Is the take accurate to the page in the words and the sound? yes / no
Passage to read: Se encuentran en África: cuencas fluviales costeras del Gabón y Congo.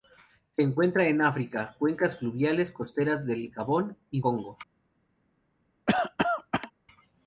no